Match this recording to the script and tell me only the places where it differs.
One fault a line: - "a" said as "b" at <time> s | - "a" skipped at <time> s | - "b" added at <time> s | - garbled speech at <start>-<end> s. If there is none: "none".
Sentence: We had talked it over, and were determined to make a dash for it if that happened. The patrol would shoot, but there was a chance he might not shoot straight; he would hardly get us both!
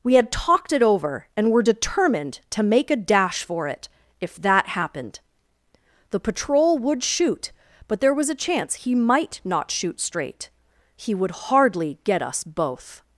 none